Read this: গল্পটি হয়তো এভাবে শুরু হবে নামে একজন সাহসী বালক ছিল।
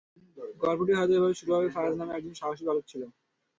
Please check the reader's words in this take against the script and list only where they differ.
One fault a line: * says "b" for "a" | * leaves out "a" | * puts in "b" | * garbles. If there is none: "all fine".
* puts in "ফারাজ"